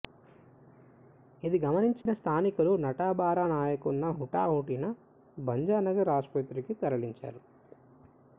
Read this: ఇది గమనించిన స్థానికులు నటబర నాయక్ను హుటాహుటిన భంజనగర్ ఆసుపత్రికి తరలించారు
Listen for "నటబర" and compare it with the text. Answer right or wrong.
right